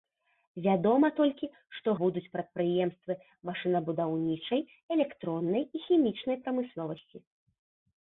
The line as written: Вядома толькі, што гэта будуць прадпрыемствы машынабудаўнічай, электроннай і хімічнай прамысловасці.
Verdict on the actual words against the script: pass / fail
fail